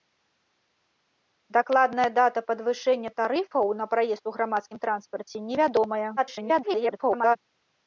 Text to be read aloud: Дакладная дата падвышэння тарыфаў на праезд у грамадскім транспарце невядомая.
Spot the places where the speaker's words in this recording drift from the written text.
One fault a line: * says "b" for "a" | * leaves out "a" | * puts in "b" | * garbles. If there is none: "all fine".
* garbles